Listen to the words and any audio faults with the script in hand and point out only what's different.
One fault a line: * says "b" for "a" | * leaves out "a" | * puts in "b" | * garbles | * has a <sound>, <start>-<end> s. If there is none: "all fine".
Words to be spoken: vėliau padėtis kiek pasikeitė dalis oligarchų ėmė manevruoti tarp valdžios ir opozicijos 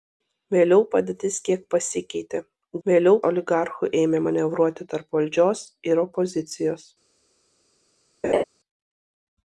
* says "vėliau" for "dalis"
* has a laugh, 8.2-8.4 s